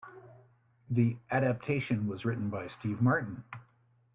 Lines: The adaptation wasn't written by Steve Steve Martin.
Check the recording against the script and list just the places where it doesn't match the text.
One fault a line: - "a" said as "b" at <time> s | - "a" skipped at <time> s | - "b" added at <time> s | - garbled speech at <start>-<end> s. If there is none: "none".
- "wasn't" said as "was" at 2.1 s
- "Steve" skipped at 3.0 s